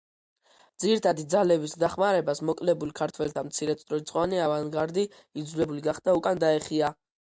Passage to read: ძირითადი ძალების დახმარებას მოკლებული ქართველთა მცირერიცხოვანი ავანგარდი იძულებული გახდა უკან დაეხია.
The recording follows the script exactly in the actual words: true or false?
true